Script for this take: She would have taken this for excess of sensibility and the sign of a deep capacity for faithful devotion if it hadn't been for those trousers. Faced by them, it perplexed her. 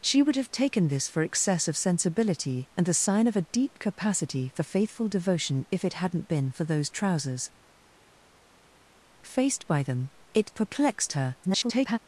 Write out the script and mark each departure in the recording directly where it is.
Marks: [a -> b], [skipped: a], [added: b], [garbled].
She would have taken this for excess of sensibility and the sign of a deep capacity for faithful devotion if it hadn't been for those trousers. Faced by them, it perplexed her. [garbled]